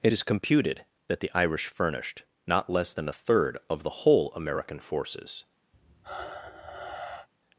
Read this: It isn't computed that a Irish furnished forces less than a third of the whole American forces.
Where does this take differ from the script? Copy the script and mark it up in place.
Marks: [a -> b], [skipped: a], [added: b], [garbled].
It [isn't -> is] computed that [a -> the] Irish furnished [forces -> not] less than a third of the whole American forces.